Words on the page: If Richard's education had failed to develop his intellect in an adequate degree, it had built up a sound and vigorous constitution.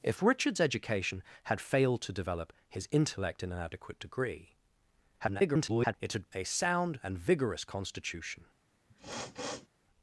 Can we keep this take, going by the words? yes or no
no